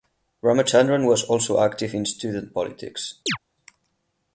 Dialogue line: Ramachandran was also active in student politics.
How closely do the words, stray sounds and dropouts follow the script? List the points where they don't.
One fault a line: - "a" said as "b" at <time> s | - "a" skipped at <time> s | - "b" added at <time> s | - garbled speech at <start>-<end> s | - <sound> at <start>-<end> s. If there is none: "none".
- chirp at 3.3-3.4 s